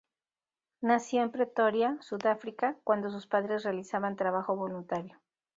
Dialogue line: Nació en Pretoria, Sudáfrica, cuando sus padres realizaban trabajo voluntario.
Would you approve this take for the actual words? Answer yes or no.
yes